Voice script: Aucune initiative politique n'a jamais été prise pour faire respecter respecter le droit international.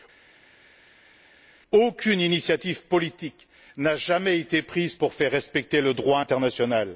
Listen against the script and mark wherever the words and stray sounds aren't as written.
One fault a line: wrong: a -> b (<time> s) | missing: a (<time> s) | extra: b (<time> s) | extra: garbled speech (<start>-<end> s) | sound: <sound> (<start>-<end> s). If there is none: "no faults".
missing: respecter (5.8 s)